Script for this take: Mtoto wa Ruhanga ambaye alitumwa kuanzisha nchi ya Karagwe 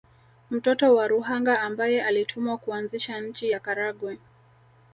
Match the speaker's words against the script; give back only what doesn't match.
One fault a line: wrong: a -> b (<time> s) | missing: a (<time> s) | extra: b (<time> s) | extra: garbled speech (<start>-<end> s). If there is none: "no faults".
no faults